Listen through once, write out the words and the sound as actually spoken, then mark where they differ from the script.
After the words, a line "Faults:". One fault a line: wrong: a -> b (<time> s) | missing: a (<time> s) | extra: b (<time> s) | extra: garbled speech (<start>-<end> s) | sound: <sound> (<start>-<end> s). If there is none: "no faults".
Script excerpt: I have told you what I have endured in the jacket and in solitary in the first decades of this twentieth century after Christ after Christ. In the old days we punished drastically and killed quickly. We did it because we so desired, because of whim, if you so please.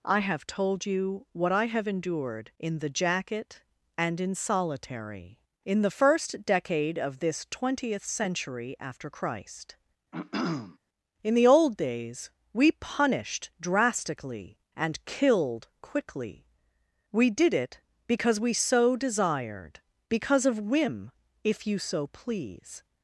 I have told you what I have endured in the jacket and in solitary in the first decade of this twentieth century after Christ. In the old days we punished drastically and killed quickly. We did it because we so desired, because of whim, if you so please.
Faults:
wrong: decades -> decade (6.4 s)
missing: after Christ (9.8 s)
sound: throat clearing (10.1-10.8 s)